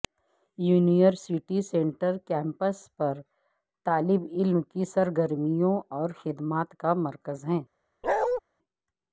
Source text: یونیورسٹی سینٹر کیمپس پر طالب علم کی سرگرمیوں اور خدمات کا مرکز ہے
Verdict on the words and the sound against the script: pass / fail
fail